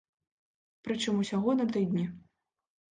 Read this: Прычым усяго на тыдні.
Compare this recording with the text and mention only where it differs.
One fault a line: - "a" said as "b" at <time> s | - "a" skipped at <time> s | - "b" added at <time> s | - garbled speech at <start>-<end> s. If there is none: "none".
none